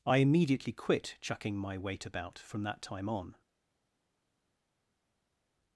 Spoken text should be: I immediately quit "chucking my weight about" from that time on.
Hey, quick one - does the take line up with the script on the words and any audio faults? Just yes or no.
yes